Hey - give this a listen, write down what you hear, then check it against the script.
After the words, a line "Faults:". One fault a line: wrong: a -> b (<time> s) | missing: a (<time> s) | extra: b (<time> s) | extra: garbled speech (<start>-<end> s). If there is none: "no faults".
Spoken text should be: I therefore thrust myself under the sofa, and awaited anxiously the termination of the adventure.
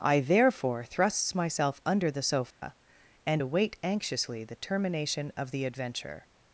I therefore thrusts myself under the sofa, and await anxiously the termination of the adventure.
Faults:
wrong: thrust -> thrusts (0.8 s)
wrong: awaited -> await (3.4 s)